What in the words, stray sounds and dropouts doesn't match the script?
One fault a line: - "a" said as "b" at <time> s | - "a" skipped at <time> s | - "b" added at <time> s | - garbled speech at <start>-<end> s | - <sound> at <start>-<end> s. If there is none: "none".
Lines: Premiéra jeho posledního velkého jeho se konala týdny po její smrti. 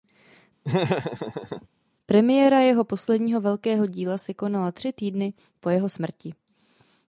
- laugh at 0.6-1.7 s
- "jeho" said as "díla" at 3.9 s
- "tři" added at 4.7 s
- "její" said as "jeho" at 5.7 s